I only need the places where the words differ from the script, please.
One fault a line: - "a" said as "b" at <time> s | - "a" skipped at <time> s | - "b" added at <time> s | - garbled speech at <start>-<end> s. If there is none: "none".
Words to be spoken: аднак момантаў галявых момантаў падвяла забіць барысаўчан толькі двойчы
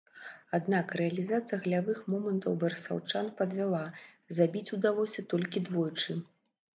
- "момантаў" said as "рэалізацыя" at 1.0 s
- "барысаўчан" added at 2.6 s
- "барысаўчан" said as "удалося" at 4.8 s